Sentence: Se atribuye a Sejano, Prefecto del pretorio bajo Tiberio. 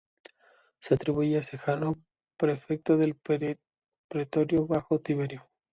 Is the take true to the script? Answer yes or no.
yes